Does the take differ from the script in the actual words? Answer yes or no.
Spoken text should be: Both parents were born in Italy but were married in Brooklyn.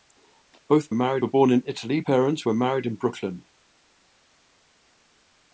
yes